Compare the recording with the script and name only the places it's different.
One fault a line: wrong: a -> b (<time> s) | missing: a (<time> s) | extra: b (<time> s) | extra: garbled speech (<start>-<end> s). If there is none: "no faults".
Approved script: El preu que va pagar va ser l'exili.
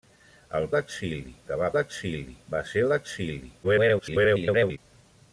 wrong: preu -> l'exili (0.7 s)
wrong: pagar -> l'exili (1.7 s)
extra: garbled speech (3.6-4.8 s)